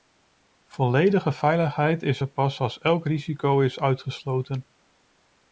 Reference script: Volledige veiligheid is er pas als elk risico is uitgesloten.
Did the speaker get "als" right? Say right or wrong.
right